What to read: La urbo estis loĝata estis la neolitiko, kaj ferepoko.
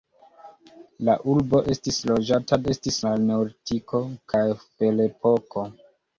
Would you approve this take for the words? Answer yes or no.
yes